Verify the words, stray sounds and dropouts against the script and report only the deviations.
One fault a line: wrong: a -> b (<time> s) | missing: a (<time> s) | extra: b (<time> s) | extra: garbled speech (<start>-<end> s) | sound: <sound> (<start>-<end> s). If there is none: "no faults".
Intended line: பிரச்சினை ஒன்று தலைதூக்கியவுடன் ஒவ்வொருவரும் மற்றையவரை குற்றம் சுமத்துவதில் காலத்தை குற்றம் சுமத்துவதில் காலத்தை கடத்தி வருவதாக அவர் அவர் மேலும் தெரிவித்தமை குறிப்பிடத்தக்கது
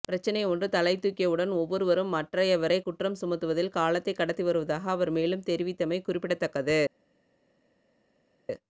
missing: குற்றம் சுமத்துவதில் காலத்தை (4.1 s)
missing: அவர் (5.1 s)